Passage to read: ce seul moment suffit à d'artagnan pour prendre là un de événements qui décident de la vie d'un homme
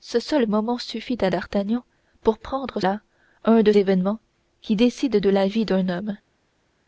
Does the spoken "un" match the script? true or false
true